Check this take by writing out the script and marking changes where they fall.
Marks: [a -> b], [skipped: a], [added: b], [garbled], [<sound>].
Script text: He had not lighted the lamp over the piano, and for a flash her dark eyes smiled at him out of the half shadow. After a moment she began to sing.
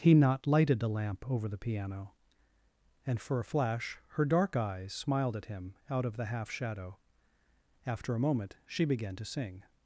He [skipped: had] not lighted the lamp over the piano, and for a flash her dark eyes smiled at him out of the half shadow. After a moment she began to sing.